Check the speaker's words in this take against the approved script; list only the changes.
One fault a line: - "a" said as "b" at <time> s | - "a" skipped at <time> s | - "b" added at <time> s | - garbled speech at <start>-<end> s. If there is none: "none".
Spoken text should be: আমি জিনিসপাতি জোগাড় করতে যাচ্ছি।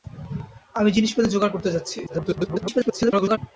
- garbled speech at 2.1-3.4 s